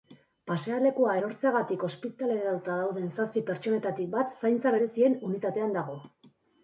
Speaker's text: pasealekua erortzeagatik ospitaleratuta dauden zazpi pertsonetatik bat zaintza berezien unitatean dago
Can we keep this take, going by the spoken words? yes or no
yes